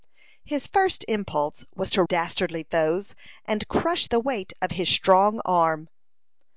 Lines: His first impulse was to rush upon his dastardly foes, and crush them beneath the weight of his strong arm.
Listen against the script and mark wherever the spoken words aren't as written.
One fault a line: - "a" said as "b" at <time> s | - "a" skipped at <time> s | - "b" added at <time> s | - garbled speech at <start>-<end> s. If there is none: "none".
- "rush upon his" skipped at 2.0 s
- "them beneath" skipped at 4.1 s